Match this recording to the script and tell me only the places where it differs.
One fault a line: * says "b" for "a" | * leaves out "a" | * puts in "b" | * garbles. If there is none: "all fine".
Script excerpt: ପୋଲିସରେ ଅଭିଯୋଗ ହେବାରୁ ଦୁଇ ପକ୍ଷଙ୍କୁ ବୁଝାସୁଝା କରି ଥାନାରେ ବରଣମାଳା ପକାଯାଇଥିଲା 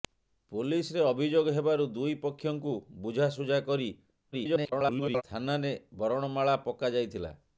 * garbles